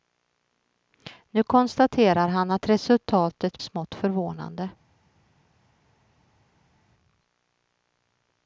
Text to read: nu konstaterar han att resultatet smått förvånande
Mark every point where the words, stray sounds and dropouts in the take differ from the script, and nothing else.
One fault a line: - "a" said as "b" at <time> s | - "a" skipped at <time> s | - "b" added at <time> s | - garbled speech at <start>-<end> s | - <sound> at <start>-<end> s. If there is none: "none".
none